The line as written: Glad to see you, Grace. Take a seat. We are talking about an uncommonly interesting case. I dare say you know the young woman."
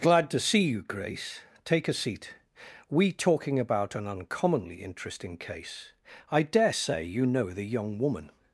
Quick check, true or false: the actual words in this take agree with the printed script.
false